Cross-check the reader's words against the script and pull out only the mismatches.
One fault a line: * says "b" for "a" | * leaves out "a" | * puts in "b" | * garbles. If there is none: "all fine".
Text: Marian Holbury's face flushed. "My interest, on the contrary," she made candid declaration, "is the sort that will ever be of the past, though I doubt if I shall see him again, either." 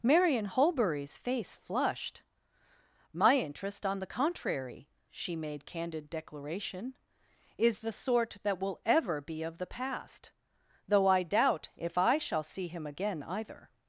all fine